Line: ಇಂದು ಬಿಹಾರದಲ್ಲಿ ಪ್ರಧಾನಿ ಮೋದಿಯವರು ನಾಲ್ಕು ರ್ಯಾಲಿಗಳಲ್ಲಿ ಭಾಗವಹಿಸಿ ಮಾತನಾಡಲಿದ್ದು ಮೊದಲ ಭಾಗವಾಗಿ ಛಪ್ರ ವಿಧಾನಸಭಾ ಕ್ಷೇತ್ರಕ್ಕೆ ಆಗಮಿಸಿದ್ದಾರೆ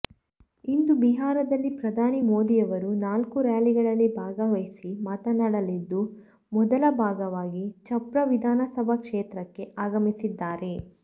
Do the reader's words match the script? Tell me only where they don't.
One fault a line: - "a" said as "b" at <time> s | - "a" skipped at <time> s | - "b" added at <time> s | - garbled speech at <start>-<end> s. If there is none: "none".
none